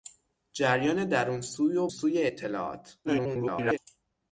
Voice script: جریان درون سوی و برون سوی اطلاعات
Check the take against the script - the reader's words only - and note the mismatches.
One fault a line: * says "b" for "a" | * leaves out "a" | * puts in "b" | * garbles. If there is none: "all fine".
* leaves out "برون"
* garbles